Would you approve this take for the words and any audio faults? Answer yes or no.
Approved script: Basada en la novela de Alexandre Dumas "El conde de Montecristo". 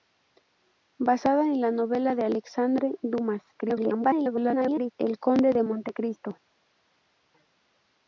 no